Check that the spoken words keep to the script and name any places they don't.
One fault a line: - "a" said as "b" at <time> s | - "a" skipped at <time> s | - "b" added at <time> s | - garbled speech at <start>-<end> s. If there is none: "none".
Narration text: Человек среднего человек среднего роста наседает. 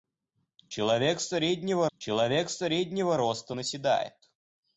none